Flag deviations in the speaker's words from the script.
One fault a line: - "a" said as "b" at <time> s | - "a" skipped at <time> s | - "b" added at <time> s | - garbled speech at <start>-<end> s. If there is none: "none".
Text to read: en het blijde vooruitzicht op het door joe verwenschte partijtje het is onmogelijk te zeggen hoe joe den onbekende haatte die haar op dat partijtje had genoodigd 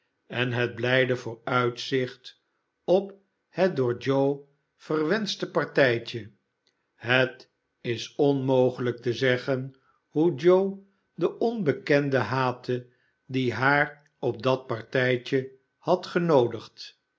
none